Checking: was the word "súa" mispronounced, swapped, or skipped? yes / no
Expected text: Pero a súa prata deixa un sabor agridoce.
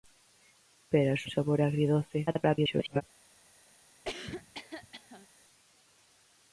yes